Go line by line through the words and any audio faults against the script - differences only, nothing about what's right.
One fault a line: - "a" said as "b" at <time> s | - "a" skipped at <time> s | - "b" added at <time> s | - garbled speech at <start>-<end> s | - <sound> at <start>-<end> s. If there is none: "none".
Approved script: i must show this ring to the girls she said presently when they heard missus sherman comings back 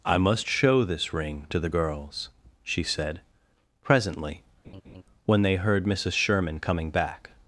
- laugh at 4.6-5.0 s
- "comings" said as "coming" at 6.6 s